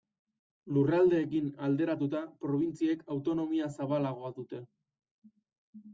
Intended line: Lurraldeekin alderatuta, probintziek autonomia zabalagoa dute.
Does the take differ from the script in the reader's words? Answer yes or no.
no